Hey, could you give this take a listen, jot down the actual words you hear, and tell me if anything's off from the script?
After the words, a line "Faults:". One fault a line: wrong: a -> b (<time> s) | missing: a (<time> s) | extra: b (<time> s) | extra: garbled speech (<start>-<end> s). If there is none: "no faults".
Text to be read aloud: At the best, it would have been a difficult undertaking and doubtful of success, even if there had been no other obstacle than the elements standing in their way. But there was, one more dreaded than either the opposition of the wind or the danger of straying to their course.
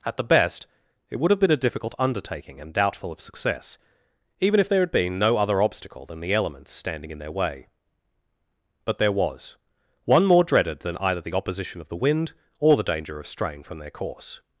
At the best, it would have been a difficult undertaking and doubtful of success, even if there had been no other obstacle than the elements standing in their way. But there was, one more dreaded than either the opposition of the wind or the danger of straying from their course.
Faults:
wrong: to -> from (13.6 s)